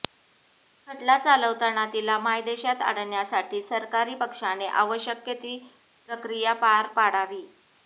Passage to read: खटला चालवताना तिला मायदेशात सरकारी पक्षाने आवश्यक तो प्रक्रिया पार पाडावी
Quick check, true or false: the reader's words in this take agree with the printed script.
false